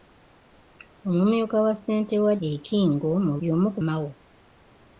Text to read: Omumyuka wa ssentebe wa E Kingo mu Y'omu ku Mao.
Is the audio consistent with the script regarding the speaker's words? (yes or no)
yes